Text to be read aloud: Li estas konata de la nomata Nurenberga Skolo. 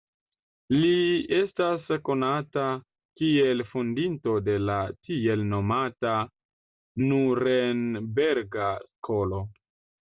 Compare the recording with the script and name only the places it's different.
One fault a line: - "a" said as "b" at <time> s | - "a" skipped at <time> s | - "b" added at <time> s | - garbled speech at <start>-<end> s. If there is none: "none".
- "kiel fondinto" added at 3.2 s
- "tiel" added at 5.1 s